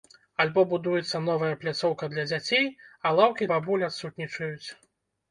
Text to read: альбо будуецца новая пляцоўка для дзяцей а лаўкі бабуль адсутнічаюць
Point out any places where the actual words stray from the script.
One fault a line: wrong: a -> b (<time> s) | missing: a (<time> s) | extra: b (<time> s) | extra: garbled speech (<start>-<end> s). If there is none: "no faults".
no faults